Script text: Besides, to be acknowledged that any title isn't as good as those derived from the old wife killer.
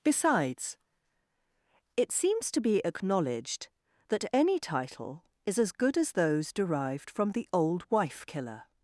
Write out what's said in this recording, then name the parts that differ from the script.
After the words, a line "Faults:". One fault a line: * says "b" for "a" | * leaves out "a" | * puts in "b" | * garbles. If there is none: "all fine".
Besides, it seems to be acknowledged that any title is as good as those derived from the old wife killer.
Faults:
* puts in "it seems"
* says "is" for "isn't"